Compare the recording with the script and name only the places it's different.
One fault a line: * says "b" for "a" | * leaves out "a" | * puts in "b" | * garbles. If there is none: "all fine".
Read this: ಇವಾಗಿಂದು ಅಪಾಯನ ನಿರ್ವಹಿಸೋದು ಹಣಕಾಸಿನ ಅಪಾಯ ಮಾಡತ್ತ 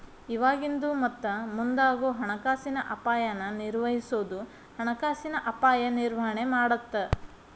* puts in "ಮತ್ತ ಮುಂದಾಗೋ ಹಣಕಾಸಿನ"
* puts in "ನಿರ್ವಹಣೆ"